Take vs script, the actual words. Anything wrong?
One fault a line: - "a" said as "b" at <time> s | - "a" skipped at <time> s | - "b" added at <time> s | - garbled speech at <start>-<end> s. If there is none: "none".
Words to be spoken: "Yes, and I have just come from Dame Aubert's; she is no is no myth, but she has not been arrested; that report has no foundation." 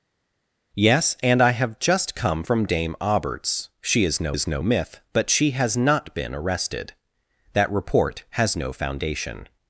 none